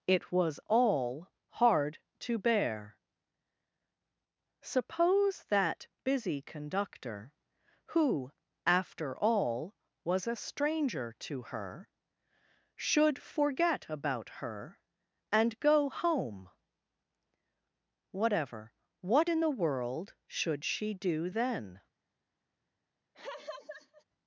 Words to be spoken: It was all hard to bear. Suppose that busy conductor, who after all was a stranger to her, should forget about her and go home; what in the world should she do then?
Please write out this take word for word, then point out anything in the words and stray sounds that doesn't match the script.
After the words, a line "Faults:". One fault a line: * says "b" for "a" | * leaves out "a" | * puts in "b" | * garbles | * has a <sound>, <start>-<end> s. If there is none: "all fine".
It was all hard to bear. Suppose that busy conductor, who after all was a stranger to her, should forget about her and go home; whatever what in the world should she do then?
Faults:
* puts in "whatever"
* has a laugh, 23.1-24.0 s